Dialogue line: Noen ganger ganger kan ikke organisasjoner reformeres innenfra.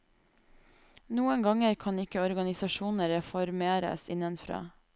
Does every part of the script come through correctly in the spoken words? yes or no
no